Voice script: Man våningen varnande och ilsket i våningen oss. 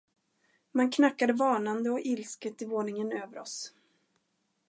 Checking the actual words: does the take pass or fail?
fail